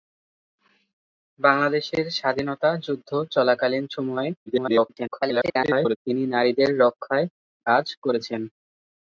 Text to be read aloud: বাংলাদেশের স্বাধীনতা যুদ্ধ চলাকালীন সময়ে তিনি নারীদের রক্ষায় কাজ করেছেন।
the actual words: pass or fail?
fail